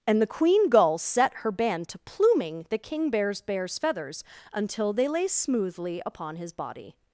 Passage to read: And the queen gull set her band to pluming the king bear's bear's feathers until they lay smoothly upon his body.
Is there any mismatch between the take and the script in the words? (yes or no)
no